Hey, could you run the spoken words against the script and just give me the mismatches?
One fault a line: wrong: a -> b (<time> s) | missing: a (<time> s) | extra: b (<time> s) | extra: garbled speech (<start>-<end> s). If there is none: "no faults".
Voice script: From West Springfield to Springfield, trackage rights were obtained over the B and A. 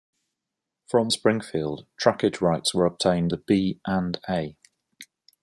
missing: West (1.1 s)
missing: to Springfield (1.8 s)
missing: over (3.3 s)